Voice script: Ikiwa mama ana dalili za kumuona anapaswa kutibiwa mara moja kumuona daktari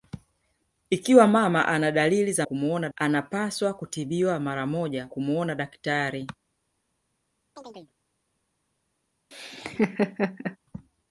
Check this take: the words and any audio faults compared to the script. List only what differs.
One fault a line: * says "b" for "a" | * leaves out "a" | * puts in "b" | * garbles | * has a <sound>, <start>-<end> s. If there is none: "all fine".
* has a chirp, 7.6-7.9 s
* has a laugh, 9.3-10.6 s